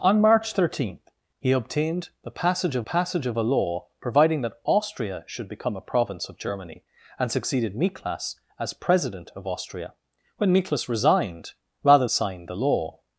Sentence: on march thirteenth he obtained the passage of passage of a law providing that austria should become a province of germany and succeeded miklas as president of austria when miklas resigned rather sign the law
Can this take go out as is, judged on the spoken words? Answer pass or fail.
pass